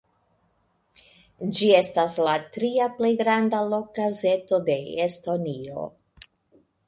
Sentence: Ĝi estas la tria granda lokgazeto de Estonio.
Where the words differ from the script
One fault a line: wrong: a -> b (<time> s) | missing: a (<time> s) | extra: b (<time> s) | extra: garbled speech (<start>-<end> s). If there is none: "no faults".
extra: plej (3.0 s)